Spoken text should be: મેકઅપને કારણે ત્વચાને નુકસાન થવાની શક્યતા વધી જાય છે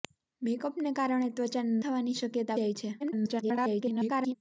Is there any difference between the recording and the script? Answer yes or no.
yes